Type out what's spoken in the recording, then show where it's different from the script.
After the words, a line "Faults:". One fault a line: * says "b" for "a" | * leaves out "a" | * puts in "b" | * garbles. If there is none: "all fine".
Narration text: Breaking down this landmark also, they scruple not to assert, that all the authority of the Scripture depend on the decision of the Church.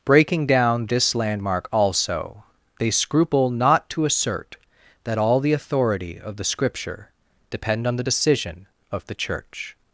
Breaking down this landmark also, they scruple not to assert, that all the authority of the Scripture depend on the decision of the Church.
Faults:
all fine